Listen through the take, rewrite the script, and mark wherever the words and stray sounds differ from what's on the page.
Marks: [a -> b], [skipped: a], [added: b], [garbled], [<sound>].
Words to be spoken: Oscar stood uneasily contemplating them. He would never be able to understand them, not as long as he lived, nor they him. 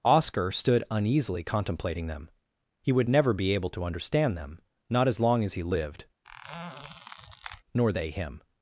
Oscar stood uneasily contemplating them. He would never be able to understand them, not as long as he lived, [squeak] nor they him.